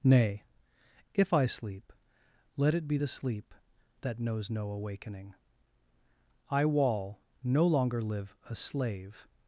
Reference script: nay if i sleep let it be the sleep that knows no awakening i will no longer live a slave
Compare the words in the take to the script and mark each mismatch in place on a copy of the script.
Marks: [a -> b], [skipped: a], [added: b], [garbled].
nay if i sleep let it be the sleep that knows no awakening i [will -> wall] no longer live a slave